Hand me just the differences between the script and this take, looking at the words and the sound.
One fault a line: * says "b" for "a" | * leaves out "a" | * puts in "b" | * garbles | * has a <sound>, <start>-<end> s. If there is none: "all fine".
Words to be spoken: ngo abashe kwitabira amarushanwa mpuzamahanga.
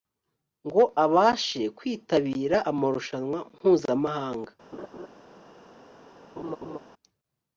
* has a laugh, 4.7-5.1 s
* has a laugh, 6.4-6.8 s